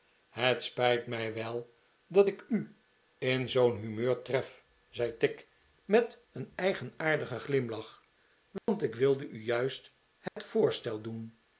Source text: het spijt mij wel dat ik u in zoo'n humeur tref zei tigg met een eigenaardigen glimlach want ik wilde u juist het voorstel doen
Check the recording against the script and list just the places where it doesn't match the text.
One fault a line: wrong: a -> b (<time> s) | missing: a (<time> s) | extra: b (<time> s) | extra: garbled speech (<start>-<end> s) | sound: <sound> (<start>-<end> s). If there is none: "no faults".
sound: dropout (8.6-8.7 s)
sound: dropout (10.3-10.4 s)